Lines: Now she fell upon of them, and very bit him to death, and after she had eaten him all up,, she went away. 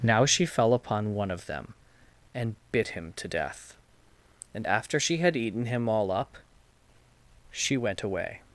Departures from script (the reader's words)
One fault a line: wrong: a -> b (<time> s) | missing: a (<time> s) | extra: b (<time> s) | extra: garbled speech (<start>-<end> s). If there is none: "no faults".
extra: one (1.1 s)
missing: very (2.5 s)